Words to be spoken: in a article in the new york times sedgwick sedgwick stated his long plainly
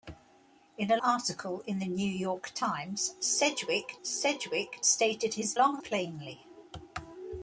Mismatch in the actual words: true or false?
false